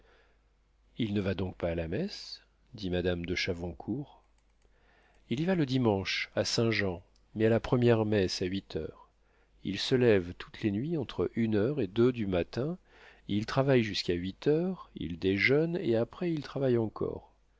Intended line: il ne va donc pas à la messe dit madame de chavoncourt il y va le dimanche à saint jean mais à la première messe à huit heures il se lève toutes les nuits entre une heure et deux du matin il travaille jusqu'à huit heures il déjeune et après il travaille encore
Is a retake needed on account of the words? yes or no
no